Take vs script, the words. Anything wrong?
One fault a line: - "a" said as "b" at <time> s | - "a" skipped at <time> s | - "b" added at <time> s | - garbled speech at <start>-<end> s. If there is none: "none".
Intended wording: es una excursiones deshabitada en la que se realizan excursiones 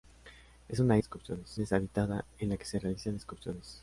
none